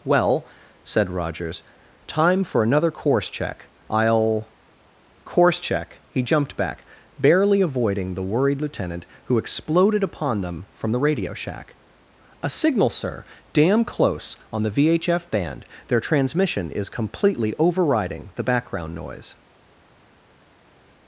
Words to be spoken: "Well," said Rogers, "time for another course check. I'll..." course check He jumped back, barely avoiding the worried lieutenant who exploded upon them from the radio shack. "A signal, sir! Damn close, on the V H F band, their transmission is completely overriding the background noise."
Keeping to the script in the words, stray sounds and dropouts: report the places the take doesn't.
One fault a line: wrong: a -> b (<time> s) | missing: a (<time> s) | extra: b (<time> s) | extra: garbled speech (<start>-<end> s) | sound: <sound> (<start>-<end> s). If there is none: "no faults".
no faults